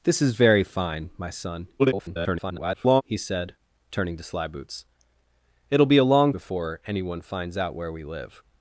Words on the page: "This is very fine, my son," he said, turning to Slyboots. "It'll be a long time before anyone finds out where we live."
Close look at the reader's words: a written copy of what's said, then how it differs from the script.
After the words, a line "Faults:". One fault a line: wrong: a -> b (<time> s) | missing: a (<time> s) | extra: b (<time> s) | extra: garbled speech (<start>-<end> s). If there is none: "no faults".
"This is very fine, my son," [garbled] he said, turning to Slyboots. "It'll be a long before anyone finds out where we live."
Faults:
extra: garbled speech (1.8-3.0 s)
missing: time (6.3 s)